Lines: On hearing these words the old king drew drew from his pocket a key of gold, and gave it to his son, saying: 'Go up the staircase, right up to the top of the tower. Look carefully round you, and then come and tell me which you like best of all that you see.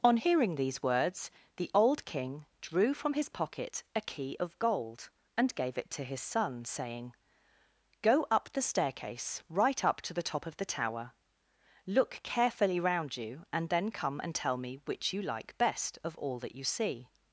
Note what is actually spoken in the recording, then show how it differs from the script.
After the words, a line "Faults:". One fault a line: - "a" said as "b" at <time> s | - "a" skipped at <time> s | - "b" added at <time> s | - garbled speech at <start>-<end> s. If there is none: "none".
On hearing these words the old king drew from his pocket a key of gold, and gave it to his son, saying: 'Go up the staircase, right up to the top of the tower. Look carefully round you, and then come and tell me which you like best of all that you see.
Faults:
- "drew" skipped at 2.9 s